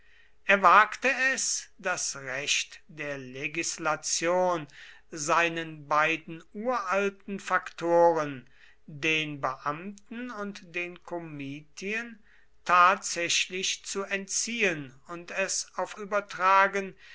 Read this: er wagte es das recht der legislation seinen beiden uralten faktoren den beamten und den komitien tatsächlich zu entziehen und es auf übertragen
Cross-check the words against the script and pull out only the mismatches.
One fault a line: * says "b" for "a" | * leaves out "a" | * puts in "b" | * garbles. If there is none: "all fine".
all fine